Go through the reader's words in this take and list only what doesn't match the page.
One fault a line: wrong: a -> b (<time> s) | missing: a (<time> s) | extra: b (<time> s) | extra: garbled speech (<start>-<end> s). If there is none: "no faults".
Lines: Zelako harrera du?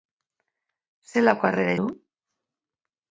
no faults